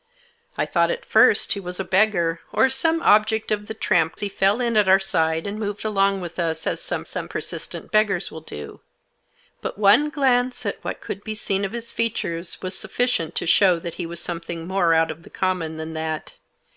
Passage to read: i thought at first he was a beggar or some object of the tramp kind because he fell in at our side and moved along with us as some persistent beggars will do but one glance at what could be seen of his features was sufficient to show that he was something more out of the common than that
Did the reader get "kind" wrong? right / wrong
wrong